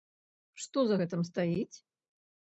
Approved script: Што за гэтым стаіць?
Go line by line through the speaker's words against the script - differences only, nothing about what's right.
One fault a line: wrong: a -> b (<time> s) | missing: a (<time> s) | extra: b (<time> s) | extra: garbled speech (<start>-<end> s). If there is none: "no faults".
no faults